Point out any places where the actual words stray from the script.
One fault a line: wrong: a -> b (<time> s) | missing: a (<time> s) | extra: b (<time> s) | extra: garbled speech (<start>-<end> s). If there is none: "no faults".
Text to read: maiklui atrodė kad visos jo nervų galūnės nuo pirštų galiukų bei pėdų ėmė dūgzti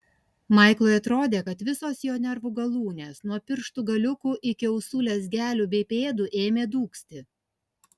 extra: iki ausų lezgelių (4.5 s)